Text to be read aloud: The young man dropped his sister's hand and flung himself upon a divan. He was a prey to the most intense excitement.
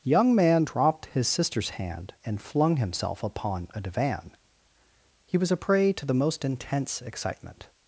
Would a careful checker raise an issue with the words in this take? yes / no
yes